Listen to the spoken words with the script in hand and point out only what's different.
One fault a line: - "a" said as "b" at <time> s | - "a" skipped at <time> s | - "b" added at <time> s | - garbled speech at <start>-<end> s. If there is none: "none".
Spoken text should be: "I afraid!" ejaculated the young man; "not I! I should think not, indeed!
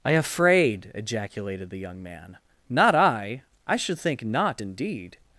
none